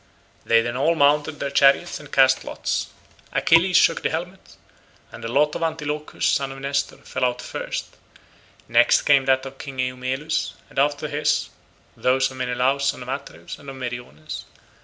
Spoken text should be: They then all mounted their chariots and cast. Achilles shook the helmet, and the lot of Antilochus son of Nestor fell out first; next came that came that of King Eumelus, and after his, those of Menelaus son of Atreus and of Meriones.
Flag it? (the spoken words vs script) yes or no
yes